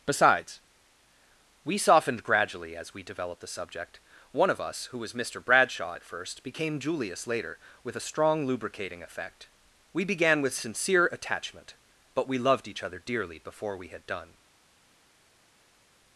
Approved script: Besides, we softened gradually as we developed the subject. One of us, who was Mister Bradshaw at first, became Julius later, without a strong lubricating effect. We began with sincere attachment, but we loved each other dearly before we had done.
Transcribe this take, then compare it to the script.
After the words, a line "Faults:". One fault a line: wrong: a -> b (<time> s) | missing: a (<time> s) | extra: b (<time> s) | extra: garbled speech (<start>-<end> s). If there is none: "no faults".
Besides, we softened gradually as we developed the subject. One of us, who was Mister Bradshaw at first, became Julius later, with a strong lubricating effect. We began with sincere attachment, but we loved each other dearly before we had done.
Faults:
wrong: without -> with (7.8 s)